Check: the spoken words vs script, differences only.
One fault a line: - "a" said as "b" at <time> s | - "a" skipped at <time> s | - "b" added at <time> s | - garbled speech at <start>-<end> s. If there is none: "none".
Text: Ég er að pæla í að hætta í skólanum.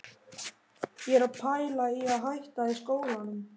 none